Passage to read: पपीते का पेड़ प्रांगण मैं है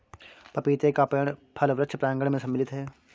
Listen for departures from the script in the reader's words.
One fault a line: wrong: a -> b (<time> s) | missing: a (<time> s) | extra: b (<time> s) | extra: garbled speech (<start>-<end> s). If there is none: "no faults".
extra: फल वृक्ष (1.6 s)
extra: सम्मिलित (2.4 s)